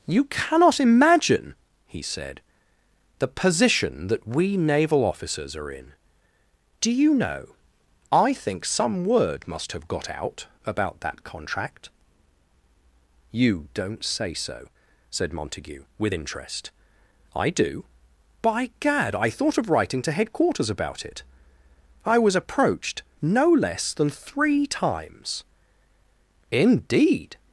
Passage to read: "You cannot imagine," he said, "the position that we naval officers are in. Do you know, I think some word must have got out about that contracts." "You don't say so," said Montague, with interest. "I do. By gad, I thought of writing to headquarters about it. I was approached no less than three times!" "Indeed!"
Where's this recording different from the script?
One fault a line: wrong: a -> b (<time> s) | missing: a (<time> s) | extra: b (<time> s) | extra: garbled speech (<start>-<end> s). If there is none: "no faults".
wrong: contracts -> contract (11.2 s)